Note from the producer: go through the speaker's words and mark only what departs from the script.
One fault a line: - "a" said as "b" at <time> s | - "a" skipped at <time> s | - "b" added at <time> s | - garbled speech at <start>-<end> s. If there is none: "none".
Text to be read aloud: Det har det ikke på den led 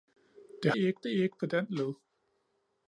- "har" said as "ikke" at 0.7 s